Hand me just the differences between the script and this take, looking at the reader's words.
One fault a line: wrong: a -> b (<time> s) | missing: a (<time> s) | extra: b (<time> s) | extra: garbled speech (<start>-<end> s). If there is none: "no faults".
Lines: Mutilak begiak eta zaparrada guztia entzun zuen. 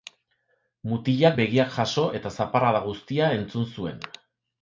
extra: jaso (1.8 s)